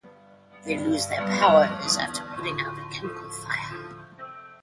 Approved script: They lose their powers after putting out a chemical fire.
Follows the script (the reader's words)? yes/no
yes